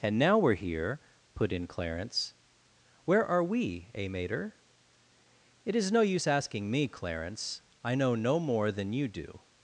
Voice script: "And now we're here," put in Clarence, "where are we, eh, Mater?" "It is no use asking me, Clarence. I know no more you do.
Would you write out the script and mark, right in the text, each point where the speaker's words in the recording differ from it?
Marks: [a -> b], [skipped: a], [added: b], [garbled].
"And now we're here," put in Clarence, "where are we, eh, Mater?" "It is no use asking me, Clarence. I know no more [added: than] you do.